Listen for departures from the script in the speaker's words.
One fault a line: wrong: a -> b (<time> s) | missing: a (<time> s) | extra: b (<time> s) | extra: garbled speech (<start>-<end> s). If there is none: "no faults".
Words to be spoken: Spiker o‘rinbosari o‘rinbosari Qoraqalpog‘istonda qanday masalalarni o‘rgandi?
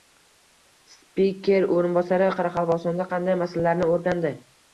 missing: o‘rinbosari (2.3 s)